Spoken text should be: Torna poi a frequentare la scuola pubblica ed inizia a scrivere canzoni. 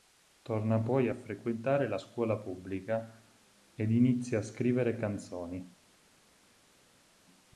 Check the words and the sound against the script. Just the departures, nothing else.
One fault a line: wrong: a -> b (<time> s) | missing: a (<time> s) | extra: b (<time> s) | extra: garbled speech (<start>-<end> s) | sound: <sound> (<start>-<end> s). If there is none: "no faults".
no faults